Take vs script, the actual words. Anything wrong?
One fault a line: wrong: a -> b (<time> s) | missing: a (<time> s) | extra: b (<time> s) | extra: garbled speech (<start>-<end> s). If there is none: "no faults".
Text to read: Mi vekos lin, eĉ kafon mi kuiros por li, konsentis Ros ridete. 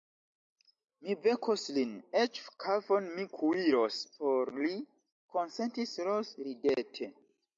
no faults